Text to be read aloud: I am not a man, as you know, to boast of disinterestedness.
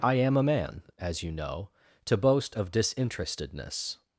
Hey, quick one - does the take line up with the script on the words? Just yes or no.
no